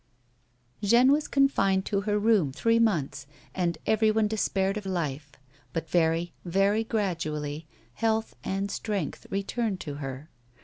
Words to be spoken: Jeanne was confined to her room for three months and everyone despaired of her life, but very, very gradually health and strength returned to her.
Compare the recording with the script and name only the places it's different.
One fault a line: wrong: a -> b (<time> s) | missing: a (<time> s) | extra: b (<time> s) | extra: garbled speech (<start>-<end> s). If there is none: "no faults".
missing: for (2.5 s)
missing: her (4.9 s)